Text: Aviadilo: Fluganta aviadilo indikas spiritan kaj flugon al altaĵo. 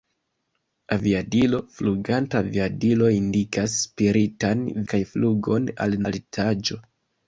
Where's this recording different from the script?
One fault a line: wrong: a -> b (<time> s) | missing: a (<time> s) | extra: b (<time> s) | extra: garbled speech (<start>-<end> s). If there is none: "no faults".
no faults